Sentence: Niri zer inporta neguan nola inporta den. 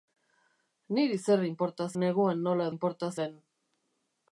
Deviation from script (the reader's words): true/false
false